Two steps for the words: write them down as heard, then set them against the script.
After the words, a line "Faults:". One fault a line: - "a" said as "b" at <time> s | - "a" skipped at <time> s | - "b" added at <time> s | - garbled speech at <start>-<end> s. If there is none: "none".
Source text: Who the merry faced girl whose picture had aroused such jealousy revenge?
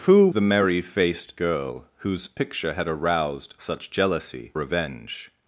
Who the merry faced girl whose picture had aroused such jealousy revenge?
Faults:
none